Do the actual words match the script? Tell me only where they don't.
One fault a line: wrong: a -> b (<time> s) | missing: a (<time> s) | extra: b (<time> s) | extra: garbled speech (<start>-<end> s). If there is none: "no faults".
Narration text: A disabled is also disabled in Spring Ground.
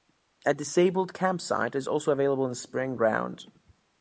extra: campsite (1.1 s)
wrong: disabled -> available (2.1 s)